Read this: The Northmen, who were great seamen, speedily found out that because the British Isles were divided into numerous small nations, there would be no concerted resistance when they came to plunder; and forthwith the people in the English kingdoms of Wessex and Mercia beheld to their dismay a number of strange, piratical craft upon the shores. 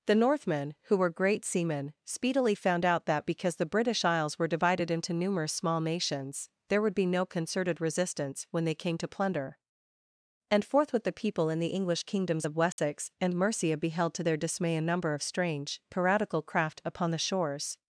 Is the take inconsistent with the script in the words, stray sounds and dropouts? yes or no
yes